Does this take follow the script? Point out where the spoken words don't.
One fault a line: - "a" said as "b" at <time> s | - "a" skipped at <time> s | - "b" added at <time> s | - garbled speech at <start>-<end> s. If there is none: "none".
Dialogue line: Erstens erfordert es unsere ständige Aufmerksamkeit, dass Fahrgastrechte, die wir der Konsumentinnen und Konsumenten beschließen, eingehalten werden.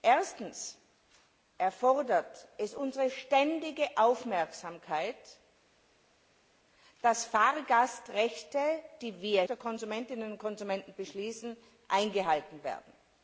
none